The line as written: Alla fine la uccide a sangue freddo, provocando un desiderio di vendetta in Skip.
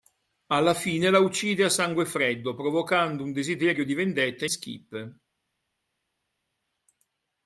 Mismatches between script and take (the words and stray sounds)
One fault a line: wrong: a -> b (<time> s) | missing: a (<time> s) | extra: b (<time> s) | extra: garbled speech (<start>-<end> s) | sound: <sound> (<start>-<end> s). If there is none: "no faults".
missing: in (4.5 s)